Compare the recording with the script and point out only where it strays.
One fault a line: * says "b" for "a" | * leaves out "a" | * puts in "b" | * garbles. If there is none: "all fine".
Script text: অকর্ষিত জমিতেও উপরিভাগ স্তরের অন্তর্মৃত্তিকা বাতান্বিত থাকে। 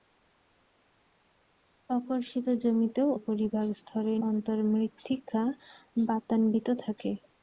all fine